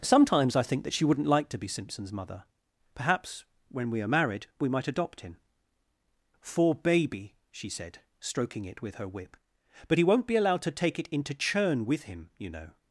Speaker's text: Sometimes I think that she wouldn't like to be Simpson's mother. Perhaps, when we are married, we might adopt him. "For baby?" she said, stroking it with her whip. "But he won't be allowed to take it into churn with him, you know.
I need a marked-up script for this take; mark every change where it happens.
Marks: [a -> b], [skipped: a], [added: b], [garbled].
Sometimes I think that she wouldn't like to be Simpson's mother. Perhaps, when we are married, we might adopt him. "For baby?" she said, stroking it with her whip. "But he won't be allowed to take it into churn with him, you know.